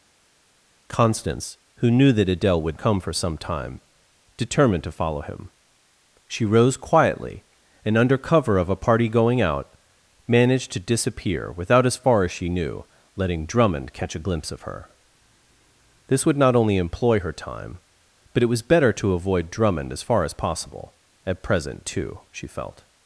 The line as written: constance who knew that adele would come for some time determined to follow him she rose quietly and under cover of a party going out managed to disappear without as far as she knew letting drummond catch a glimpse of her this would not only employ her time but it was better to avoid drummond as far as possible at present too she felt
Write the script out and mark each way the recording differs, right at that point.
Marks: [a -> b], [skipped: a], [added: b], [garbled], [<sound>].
constance who knew that adele would come for some time determined to follow him she rose quietly and under cover of a party going out managed to disappear without as far as she knew letting drummond catch a glimpse of her this would not only employ her time but it was better to avoid drummond as far as possible at present too she felt